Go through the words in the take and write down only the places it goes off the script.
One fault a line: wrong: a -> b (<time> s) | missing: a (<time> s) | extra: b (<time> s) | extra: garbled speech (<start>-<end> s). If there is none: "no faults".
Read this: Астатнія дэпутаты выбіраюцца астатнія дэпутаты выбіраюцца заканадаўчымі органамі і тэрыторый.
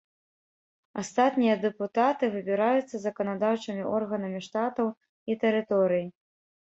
missing: астатнія дэпутаты выбіраюцца (3.0 s)
extra: штатаў (4.5 s)